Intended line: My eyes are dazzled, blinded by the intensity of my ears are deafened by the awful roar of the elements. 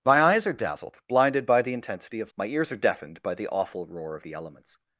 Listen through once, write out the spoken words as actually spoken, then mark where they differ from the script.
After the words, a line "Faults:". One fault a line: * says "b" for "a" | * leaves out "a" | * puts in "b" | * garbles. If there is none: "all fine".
My eyes are dazzled, blinded by the intensity of my ears are deafened by the awful roar of the elements.
Faults:
all fine